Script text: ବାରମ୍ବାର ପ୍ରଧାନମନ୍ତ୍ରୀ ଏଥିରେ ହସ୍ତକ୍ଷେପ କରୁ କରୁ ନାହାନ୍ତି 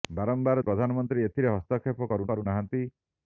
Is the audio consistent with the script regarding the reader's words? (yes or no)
yes